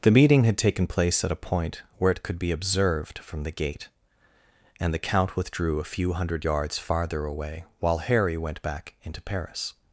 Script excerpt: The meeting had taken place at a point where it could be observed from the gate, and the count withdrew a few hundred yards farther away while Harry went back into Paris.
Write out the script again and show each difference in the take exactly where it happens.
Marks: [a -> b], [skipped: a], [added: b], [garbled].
The meeting had taken place at a point where it could be observed from the gate, and the count withdrew a few hundred yards farther away while Harry went back into Paris.